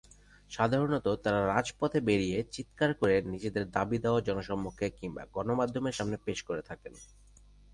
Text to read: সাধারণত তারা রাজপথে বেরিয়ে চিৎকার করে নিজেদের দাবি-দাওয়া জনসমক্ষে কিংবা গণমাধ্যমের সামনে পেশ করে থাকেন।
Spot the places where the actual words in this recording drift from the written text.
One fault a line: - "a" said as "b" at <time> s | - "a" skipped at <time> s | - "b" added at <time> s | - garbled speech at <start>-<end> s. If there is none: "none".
none